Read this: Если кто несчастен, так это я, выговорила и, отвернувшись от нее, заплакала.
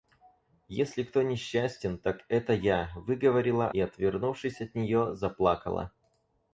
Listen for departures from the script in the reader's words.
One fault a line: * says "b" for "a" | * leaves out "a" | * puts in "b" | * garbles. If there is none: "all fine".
all fine